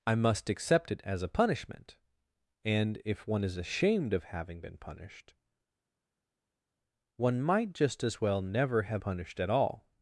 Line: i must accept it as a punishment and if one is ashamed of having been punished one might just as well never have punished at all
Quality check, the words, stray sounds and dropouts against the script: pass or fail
pass